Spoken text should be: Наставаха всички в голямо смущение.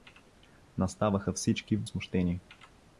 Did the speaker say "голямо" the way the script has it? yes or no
no